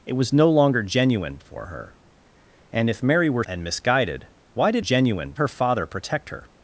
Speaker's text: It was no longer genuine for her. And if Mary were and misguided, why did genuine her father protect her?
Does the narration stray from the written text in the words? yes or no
no